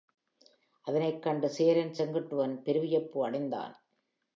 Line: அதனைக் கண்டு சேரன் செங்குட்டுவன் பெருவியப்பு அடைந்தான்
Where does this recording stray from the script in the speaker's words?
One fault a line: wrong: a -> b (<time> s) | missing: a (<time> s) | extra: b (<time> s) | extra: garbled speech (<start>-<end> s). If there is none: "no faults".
no faults